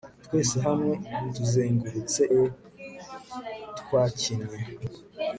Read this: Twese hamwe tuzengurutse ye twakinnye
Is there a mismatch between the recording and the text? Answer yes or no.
no